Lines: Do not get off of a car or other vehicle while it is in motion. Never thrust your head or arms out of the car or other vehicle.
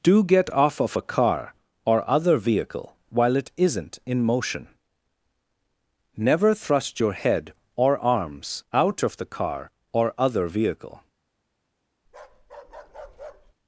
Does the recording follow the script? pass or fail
fail